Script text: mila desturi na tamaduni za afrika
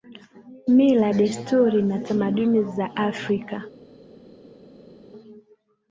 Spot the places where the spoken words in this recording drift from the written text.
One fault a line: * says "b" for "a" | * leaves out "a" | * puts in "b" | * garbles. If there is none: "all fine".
all fine